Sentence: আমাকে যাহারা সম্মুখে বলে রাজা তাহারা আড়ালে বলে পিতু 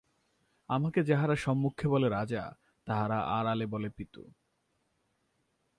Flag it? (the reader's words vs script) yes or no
no